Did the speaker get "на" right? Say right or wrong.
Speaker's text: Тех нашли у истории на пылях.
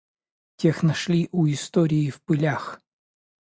wrong